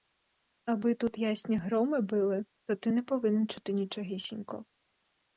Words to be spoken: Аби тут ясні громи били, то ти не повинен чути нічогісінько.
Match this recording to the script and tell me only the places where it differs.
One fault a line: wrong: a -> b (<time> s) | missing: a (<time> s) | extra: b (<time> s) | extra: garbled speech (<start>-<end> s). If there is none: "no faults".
no faults